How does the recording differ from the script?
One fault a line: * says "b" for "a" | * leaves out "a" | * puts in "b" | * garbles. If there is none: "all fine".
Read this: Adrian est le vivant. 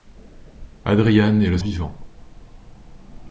all fine